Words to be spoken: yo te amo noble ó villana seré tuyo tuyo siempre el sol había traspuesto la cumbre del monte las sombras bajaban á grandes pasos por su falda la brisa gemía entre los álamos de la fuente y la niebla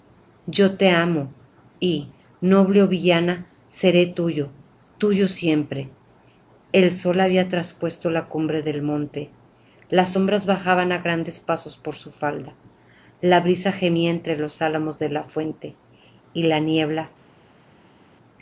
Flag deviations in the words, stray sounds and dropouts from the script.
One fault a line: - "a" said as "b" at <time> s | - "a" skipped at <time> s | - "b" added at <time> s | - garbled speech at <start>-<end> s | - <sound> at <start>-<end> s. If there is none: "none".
- "y" added at 1.8 s